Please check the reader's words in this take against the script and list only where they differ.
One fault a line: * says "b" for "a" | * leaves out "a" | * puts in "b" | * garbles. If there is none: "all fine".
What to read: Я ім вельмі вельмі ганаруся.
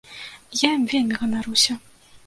* leaves out "вельмі"